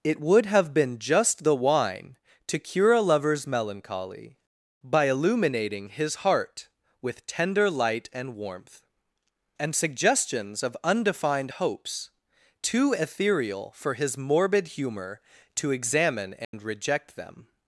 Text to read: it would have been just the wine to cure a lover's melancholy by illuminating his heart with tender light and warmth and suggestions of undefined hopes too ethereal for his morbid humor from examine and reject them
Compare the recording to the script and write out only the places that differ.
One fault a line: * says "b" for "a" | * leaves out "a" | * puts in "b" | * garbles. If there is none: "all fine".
* says "to" for "from"